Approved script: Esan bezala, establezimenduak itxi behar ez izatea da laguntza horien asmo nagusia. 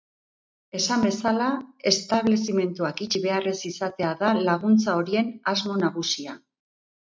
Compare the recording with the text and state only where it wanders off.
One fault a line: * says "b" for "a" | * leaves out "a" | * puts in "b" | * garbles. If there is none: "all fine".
all fine